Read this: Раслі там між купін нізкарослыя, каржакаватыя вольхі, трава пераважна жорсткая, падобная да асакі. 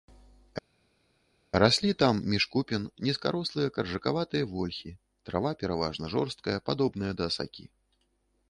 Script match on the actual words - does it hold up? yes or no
yes